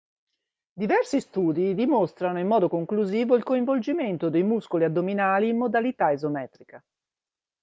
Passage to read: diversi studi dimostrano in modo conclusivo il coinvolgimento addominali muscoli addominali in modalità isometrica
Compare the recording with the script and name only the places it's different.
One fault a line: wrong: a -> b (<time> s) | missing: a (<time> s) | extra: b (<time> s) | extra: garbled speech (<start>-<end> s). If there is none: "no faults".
wrong: addominali -> dei (4.3 s)